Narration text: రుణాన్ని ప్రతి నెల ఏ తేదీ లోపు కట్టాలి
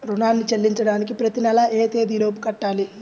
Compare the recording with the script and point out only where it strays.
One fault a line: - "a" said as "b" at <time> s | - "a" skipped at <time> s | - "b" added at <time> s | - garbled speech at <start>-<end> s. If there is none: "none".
- "చెల్లించడానికి" added at 0.5 s